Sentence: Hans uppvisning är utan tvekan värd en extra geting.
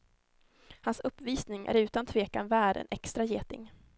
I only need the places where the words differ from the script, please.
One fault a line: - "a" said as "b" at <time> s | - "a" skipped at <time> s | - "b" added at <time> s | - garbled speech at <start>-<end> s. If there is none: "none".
none